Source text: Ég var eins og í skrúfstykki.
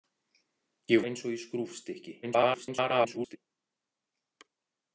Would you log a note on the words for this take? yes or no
yes